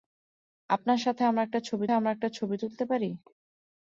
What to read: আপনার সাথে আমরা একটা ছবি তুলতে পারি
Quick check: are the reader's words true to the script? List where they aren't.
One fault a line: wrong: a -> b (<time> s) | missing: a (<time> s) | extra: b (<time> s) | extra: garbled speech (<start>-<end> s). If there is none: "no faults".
extra: আমরা একটা ছবি (1.9 s)